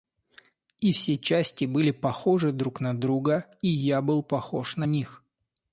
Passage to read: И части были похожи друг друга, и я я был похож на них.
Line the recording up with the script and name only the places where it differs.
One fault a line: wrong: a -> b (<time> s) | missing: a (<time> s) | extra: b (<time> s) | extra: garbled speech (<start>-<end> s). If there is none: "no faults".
extra: все (0.9 s)
extra: на (2.8 s)
missing: я (4.0 s)